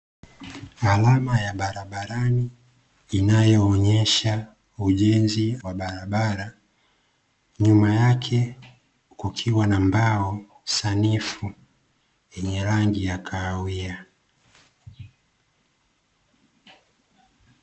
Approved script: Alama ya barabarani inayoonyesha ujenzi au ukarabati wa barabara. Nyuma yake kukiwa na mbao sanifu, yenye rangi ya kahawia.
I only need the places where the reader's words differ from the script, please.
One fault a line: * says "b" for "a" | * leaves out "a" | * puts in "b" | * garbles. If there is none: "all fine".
* leaves out "au ukarabati"